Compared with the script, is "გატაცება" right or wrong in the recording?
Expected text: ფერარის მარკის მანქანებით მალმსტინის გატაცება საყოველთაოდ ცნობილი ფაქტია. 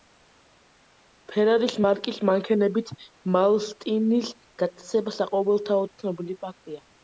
right